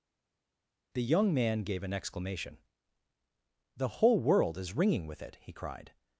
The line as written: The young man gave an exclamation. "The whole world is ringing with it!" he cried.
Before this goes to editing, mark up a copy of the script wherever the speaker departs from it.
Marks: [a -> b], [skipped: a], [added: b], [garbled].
The young man gave an exclamation. "The whole world is ringing with it!" he cried.